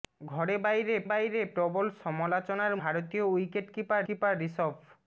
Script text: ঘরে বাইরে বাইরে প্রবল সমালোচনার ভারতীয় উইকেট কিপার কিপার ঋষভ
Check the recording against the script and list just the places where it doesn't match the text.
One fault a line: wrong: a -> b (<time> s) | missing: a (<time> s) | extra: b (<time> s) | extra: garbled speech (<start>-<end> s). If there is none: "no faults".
no faults